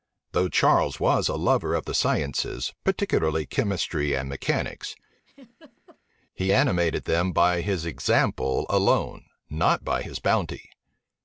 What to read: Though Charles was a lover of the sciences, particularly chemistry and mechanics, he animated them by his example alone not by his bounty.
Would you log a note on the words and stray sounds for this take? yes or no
yes